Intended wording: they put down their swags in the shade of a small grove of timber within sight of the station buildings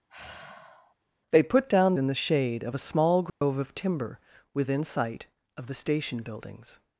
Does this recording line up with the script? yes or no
no